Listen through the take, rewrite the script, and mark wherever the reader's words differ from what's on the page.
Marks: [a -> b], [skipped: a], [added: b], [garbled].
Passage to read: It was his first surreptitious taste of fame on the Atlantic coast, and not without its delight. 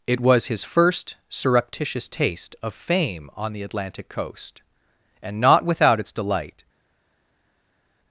It was his first surreptitious taste of fame on the Atlantic coast, and not without its delight.